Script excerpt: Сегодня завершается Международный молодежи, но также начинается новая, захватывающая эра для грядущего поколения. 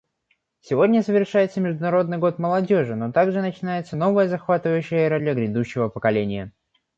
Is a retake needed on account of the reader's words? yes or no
yes